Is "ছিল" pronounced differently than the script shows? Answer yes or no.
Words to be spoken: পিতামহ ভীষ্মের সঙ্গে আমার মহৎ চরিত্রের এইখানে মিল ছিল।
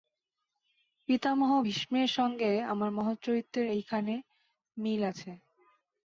yes